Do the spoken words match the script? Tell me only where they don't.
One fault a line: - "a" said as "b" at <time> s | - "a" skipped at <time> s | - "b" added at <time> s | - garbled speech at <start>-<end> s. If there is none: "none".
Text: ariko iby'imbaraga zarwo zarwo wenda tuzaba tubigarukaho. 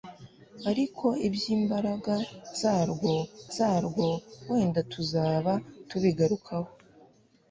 none